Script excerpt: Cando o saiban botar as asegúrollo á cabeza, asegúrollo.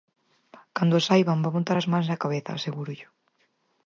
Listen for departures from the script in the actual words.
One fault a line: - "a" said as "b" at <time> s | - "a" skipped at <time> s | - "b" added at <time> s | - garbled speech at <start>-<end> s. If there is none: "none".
- "van" added at 1.4 s
- "asegúrollo" said as "mans" at 1.9 s